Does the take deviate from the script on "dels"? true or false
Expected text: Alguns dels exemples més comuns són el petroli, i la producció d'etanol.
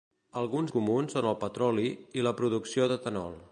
true